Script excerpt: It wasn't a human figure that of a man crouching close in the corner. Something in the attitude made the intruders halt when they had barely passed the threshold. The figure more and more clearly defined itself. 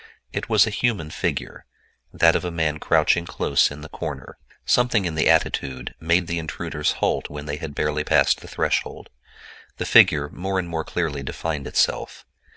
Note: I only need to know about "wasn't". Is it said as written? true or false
false